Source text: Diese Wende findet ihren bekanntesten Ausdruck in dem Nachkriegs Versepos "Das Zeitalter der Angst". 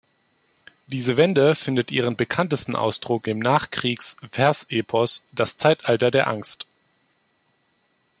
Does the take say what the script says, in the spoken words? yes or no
no